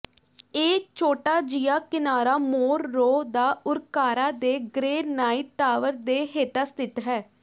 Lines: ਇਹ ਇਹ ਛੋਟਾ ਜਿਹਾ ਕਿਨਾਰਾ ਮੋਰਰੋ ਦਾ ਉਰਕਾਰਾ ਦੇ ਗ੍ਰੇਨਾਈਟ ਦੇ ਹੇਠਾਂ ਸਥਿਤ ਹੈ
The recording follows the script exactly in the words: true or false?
false